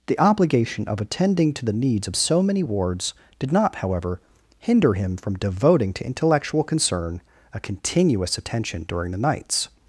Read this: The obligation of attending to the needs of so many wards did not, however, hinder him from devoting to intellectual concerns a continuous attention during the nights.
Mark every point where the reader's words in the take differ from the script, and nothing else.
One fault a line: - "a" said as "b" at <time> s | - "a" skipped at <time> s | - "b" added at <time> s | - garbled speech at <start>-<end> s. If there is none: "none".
- "concerns" said as "concern" at 6.6 s